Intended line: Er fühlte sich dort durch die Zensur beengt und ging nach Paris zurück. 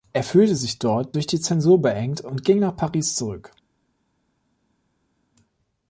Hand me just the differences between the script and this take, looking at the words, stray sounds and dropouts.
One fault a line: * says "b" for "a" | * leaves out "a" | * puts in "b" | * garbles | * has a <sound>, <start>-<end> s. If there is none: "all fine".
all fine